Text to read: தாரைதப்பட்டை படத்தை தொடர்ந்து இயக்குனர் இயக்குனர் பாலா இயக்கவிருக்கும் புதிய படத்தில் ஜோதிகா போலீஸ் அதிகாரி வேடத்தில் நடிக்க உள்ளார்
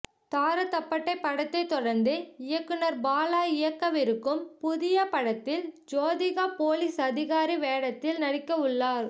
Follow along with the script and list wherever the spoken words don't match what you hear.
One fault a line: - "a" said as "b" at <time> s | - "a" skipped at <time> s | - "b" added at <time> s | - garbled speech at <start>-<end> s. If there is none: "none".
- "இயக்குனர்" skipped at 3.0 s